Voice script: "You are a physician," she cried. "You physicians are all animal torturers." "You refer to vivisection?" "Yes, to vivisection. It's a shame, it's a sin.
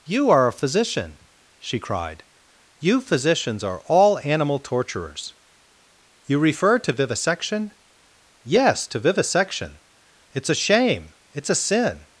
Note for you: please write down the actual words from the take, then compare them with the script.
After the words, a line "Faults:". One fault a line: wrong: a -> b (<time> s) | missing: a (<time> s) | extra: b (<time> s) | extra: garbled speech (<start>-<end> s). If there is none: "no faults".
"You are a physician," she cried. "You physicians are all animal torturers." "You refer to vivisection?" "Yes, to vivisection. It's a shame, it's a sin.
Faults:
no faults